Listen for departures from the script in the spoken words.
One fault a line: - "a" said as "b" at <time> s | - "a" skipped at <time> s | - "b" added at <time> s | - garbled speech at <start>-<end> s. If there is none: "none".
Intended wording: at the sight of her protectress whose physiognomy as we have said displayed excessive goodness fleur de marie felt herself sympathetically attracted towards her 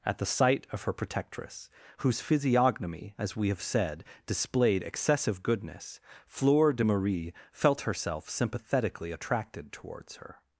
none